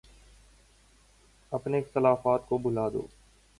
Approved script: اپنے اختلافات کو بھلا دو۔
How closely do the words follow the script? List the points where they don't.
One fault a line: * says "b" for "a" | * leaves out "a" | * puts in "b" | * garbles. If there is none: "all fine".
all fine